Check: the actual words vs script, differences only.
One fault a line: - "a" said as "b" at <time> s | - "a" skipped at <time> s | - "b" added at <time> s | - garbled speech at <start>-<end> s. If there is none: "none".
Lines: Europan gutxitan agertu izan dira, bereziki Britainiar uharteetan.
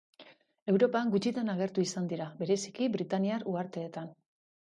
none